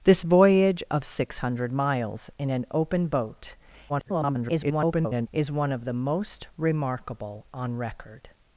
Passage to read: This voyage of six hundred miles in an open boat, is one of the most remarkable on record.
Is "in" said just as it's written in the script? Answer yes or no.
yes